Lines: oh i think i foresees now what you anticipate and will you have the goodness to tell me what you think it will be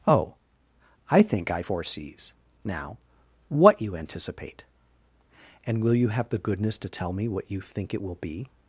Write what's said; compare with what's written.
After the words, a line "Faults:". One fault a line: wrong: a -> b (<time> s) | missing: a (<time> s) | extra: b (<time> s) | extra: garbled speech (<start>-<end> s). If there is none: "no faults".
oh i think i foresees now what you anticipate and will you have the goodness to tell me what you think it will be
Faults:
no faults